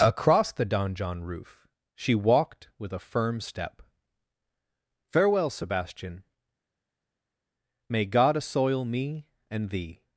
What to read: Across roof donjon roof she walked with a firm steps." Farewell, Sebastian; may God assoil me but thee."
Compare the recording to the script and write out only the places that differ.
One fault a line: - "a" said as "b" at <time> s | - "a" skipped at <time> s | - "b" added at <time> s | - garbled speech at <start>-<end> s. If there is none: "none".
- "roof" said as "the" at 0.5 s
- "steps" said as "step" at 3.4 s
- "but" said as "and" at 9.5 s